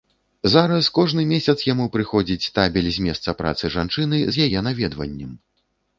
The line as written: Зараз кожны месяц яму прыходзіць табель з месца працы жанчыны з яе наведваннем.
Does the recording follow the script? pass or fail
pass